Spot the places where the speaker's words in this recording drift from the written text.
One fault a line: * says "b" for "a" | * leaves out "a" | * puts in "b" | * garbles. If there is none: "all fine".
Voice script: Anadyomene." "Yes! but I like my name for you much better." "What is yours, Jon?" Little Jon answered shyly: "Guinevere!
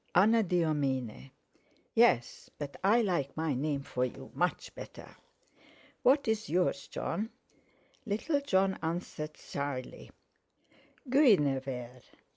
all fine